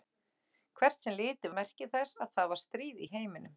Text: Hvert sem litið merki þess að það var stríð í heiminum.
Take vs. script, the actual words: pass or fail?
pass